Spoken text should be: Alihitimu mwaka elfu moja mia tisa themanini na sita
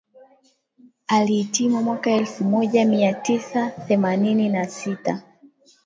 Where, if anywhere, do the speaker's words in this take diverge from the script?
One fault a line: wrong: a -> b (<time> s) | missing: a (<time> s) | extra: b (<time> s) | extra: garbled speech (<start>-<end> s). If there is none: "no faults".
no faults